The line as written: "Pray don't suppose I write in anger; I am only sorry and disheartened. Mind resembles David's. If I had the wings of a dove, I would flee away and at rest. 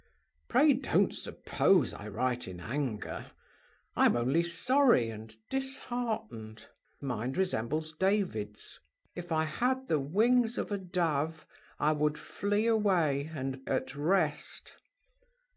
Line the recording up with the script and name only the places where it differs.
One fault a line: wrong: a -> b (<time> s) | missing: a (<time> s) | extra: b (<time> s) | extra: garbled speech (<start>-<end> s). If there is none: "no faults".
no faults